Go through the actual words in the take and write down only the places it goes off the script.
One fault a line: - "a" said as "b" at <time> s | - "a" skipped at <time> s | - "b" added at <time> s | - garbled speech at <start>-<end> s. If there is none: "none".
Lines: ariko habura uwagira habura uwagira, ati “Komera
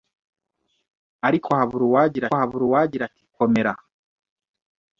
none